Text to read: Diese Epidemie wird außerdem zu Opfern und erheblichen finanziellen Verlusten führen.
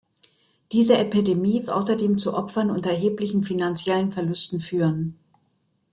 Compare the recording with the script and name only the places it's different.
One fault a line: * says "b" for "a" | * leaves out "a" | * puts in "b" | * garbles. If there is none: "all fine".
* leaves out "wird"